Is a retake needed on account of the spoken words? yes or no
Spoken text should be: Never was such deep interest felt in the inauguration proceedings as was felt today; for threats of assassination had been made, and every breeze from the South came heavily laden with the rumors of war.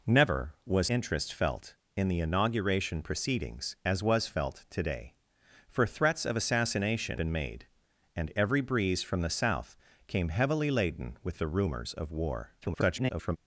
yes